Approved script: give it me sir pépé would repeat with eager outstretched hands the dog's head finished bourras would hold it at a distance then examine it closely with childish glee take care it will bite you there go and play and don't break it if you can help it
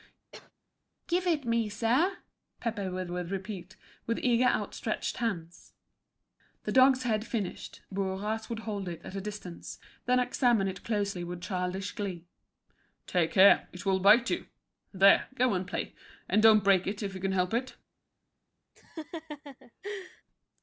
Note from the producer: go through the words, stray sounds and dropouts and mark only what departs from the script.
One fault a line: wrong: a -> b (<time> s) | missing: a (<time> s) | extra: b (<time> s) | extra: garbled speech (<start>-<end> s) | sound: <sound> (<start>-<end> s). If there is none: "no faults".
sound: cough (0.3-0.5 s)
extra: would (3.1 s)
sound: laugh (18.8-20.2 s)